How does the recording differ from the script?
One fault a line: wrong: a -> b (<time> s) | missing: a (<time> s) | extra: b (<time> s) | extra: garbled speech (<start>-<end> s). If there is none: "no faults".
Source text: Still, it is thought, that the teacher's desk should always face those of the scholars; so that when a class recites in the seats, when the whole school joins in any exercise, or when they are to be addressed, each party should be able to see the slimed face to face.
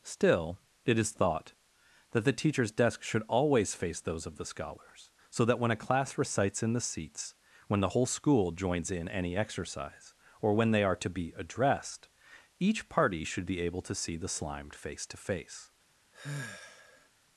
no faults